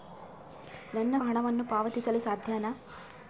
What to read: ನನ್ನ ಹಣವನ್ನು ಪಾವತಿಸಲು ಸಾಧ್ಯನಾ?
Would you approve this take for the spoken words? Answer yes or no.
yes